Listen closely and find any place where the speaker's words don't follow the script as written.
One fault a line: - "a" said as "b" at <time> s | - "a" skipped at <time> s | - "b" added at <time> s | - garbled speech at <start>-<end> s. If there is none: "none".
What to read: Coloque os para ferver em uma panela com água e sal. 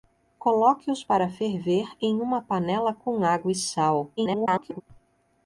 - garbled speech at 4.2-4.8 s